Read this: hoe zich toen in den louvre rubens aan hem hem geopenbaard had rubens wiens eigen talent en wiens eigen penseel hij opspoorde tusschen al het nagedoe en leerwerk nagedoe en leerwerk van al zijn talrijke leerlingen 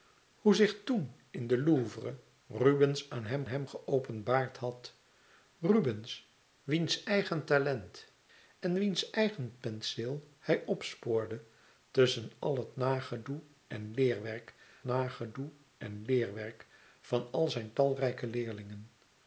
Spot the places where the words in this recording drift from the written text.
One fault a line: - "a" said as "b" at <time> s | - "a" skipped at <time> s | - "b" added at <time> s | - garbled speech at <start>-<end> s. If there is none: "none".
none